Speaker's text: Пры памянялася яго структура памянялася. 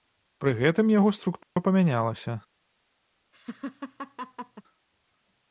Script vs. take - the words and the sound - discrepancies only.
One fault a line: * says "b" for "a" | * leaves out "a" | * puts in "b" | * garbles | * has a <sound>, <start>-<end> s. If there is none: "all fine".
* says "гэтым" for "памянялася"
* has a dropout, 1.4-1.6 s
* has a laugh, 3.3-4.6 s